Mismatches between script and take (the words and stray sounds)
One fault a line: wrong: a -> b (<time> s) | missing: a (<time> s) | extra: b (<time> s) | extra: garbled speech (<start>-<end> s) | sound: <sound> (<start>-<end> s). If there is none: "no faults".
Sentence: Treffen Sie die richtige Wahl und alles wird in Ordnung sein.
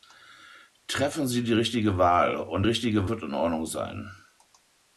wrong: alles -> richtige (2.6 s)